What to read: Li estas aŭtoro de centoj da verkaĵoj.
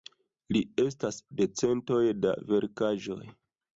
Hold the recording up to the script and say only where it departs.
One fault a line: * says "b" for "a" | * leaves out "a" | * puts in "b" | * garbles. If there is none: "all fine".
* leaves out "aŭtoro"